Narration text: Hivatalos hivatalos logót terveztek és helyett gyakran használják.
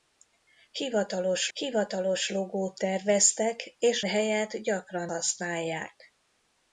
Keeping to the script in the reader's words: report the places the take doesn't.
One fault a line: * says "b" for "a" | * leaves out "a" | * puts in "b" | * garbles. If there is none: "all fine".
all fine